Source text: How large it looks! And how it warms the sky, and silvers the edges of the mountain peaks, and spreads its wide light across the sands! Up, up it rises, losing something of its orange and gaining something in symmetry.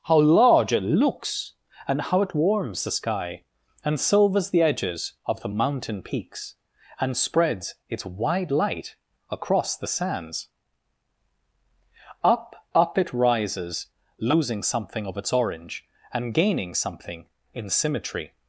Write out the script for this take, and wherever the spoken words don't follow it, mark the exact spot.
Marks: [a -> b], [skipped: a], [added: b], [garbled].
How large it looks! And how it warms the sky, and silvers the edges of the mountain peaks, and spreads its wide light across the sands! Up, up it rises, losing something of its orange and gaining something in symmetry.